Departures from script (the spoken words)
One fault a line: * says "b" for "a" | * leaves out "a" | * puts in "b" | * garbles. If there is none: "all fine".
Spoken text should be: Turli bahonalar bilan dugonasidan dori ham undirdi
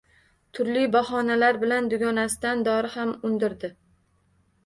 all fine